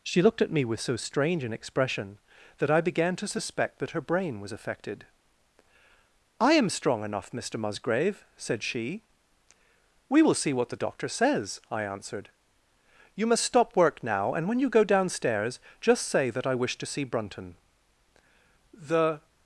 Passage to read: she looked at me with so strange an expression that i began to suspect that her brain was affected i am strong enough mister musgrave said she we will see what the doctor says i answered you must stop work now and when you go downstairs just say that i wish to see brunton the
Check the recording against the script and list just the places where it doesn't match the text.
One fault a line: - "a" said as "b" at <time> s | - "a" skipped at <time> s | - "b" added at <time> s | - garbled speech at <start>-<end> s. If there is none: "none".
none